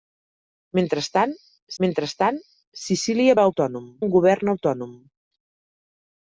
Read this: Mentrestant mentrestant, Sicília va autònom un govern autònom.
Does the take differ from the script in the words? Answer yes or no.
no